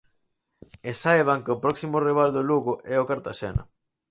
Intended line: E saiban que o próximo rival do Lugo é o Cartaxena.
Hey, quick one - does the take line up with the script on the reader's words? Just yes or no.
yes